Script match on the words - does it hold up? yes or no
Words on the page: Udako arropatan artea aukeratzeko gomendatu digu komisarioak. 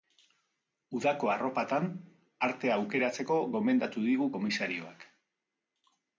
yes